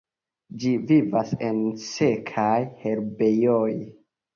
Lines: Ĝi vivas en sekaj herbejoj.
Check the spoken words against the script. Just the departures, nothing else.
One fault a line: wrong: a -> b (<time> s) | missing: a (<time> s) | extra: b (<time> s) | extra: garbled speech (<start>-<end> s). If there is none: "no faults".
no faults